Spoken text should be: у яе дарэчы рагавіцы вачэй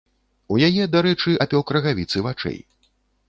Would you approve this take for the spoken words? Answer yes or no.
no